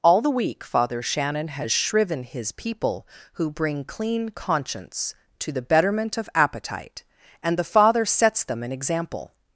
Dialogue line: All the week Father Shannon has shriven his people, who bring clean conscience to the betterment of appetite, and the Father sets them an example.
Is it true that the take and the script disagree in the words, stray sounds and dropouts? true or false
false